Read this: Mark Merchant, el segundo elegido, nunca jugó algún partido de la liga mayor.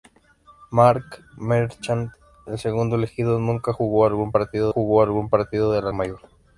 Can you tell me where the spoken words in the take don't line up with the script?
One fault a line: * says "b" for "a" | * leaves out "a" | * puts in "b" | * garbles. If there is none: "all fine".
* puts in "jugó algún partido"
* leaves out "liga"